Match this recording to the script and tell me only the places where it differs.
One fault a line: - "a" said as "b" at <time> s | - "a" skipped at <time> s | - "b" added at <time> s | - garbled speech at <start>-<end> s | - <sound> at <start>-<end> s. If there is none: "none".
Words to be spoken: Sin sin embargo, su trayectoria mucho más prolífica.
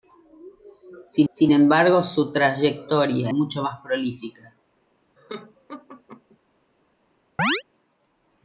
- laugh at 5.2-6.4 s
- chirp at 7.4-7.6 s